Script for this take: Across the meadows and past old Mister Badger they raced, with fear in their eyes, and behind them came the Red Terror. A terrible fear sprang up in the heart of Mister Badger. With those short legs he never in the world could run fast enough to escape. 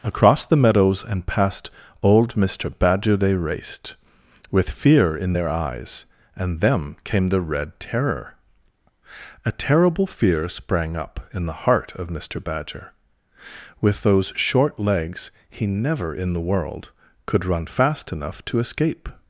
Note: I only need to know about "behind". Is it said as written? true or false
false